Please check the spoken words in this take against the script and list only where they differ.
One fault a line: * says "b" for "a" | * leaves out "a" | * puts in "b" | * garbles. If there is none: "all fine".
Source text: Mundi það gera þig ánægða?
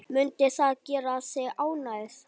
all fine